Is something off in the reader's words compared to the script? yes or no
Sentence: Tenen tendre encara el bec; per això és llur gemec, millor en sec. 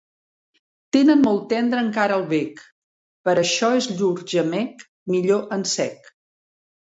yes